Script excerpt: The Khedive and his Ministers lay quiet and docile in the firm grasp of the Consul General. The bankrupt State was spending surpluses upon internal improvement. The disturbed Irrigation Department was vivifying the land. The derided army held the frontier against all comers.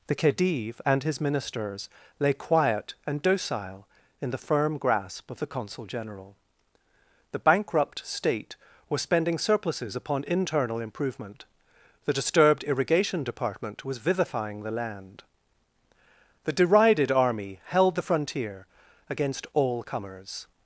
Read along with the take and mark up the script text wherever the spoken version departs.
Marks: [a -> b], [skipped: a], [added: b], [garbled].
The Khedive and his Ministers lay quiet and docile in the firm grasp of the Consul General. The bankrupt State was spending surpluses upon internal improvement. The disturbed Irrigation Department was vivifying the land. The derided army held the frontier against all comers.